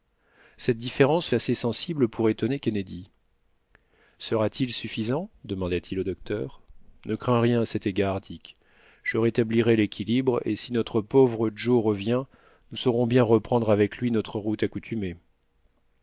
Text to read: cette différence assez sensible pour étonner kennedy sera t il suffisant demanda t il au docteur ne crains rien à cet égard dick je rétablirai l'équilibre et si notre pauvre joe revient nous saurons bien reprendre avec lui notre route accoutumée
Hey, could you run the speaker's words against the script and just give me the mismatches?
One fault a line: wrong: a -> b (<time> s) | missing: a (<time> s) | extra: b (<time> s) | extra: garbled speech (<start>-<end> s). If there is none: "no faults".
no faults